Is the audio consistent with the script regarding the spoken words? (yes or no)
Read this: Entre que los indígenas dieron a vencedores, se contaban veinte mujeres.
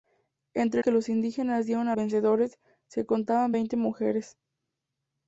yes